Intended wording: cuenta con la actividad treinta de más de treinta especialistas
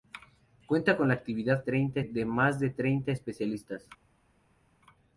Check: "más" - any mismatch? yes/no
no